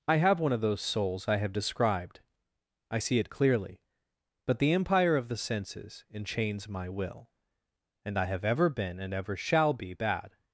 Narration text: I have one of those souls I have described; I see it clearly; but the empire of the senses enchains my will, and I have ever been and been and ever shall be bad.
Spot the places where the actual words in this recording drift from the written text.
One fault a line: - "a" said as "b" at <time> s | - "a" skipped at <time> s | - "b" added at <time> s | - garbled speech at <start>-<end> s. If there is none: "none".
- "been and" skipped at 9.1 s